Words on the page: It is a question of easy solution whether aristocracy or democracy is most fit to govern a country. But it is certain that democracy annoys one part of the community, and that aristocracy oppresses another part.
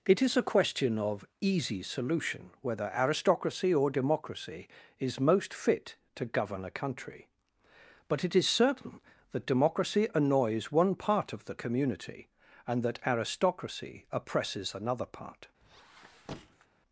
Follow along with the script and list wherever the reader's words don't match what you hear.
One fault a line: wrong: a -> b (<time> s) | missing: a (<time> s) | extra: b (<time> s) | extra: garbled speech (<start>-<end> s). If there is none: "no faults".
no faults